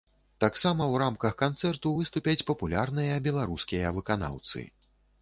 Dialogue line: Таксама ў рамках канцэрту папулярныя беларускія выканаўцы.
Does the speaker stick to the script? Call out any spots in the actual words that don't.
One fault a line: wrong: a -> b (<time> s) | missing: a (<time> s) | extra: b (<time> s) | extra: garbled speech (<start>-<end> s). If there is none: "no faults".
extra: выступяць (2.0 s)